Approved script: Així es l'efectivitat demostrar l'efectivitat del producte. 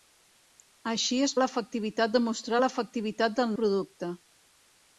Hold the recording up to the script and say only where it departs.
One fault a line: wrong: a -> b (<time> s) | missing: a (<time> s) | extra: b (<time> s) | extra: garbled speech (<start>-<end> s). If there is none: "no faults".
no faults